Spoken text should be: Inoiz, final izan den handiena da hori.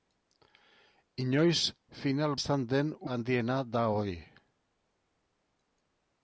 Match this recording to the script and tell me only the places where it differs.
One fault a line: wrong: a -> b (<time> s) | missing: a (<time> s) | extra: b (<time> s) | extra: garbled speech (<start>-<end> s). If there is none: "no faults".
no faults